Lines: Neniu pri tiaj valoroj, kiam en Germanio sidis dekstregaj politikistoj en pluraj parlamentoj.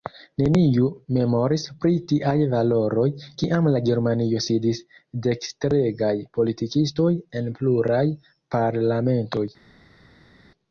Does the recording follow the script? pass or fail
fail